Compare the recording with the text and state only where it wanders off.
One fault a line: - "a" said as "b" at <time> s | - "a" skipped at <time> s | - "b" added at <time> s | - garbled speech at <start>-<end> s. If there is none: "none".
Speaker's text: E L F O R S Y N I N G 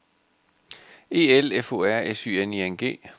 none